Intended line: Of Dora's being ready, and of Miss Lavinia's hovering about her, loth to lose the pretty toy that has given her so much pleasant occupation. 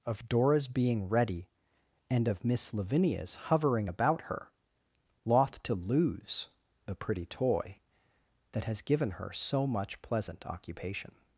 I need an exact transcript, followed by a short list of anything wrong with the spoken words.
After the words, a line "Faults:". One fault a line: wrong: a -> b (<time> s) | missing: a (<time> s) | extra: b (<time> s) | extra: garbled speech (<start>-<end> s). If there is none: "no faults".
Of Dora's being ready, and of Miss Lavinia's hovering about her, loth to lose the pretty toy that has given her so much pleasant occupation.
Faults:
no faults